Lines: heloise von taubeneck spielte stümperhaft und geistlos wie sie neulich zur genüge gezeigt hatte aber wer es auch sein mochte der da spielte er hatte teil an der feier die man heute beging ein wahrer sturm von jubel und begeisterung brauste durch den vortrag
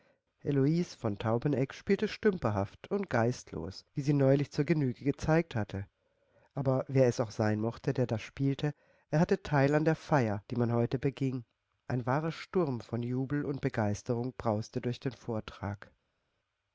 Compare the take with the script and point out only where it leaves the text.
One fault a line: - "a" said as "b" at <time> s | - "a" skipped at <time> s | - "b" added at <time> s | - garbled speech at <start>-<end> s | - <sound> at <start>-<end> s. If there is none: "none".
none